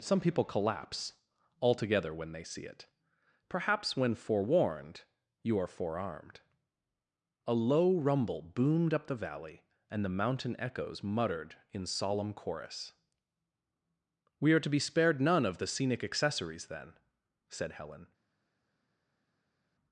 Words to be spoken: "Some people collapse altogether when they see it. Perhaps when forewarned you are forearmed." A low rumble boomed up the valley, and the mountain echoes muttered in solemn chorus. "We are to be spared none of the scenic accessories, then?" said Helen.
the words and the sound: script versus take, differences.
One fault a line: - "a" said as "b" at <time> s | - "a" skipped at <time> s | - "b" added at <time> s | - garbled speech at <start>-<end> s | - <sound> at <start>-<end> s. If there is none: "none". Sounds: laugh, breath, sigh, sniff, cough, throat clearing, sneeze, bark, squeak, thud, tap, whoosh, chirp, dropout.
none